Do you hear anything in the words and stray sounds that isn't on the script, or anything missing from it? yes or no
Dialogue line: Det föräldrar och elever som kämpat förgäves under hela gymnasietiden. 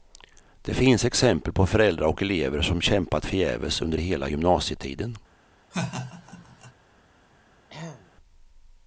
yes